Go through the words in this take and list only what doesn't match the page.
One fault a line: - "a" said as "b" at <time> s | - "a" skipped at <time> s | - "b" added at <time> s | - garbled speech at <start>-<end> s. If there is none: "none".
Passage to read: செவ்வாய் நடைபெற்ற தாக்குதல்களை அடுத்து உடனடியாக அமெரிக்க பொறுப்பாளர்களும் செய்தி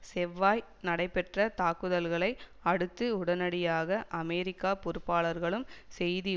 none